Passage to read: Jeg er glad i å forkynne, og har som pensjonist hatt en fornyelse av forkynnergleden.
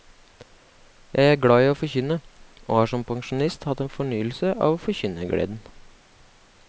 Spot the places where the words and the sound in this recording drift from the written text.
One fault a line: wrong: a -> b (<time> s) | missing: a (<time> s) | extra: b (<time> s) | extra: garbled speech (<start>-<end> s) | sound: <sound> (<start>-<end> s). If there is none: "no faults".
no faults